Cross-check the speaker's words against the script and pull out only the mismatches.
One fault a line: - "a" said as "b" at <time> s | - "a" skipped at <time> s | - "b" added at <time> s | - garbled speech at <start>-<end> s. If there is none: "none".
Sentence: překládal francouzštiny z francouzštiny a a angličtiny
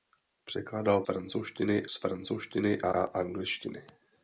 none